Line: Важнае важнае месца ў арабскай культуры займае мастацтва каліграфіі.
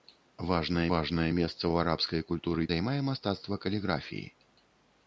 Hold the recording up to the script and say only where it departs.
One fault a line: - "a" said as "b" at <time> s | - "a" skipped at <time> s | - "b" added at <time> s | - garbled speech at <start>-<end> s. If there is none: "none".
none